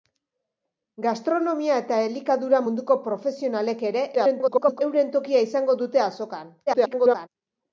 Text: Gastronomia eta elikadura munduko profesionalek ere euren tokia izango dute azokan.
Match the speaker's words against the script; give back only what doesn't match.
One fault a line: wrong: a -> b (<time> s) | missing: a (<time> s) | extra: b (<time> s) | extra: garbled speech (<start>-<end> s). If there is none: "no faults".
extra: garbled speech (4.1-4.8 s)
extra: garbled speech (6.7-7.3 s)